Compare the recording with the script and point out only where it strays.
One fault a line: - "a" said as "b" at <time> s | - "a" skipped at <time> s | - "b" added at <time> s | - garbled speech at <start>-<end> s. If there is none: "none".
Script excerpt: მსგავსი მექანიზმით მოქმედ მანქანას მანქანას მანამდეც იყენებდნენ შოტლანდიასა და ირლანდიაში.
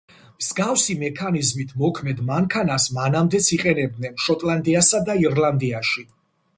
- "მანქანას" skipped at 2.9 s